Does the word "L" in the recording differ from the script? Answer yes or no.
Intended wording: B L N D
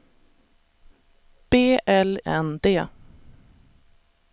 no